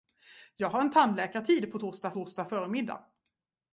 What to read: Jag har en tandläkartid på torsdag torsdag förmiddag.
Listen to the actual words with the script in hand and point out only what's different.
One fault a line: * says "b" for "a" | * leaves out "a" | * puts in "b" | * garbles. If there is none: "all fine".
all fine